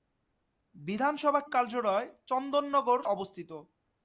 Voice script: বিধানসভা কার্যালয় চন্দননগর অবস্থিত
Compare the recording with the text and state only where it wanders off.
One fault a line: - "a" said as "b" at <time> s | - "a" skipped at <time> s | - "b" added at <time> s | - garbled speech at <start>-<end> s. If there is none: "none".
none